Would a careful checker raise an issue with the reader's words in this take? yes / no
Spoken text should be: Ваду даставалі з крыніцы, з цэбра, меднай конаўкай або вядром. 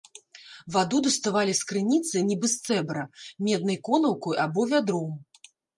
yes